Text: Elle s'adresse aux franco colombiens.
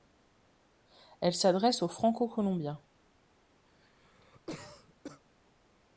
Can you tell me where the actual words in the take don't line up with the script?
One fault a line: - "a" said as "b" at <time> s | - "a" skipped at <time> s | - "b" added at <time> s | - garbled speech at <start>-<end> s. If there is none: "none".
none